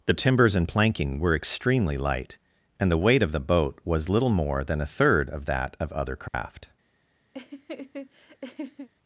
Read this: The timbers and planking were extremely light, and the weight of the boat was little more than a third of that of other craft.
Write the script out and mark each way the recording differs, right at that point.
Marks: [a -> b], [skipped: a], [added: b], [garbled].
The timbers and planking were extremely light, and the weight of the boat was little more than a third of that of other craft.